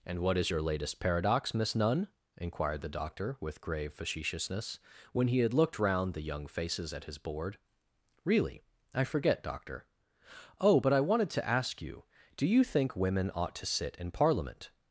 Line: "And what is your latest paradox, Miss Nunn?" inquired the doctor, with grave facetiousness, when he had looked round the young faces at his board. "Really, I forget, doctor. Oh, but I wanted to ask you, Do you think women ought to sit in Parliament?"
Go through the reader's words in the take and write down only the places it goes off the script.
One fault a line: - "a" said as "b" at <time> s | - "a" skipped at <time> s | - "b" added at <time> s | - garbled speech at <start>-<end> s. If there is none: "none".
none